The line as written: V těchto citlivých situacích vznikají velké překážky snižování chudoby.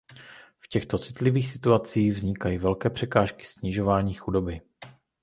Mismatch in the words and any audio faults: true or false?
false